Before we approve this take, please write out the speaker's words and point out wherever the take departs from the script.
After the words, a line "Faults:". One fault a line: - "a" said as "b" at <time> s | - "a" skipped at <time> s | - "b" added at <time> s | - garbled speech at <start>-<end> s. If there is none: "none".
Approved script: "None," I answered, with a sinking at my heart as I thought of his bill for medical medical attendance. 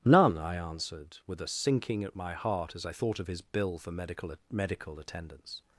"None," I answered, with a sinking at my heart as I thought of his bill for medical medical attendance.
Faults:
none